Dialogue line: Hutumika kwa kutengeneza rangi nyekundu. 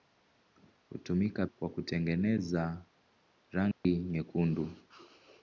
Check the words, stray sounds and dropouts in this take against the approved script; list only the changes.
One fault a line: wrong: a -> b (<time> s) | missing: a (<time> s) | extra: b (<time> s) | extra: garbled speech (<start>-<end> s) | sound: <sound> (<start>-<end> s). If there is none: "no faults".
sound: dropout (3.7-3.8 s)